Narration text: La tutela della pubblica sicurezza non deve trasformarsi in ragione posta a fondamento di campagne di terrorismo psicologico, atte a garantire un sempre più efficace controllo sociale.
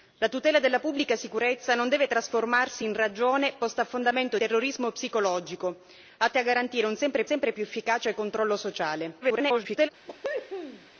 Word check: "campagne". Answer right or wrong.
wrong